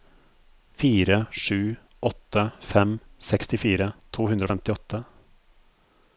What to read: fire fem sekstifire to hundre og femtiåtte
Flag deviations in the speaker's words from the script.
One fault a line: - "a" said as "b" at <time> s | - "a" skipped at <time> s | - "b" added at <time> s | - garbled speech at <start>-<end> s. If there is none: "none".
- "sju åtte" added at 1.3 s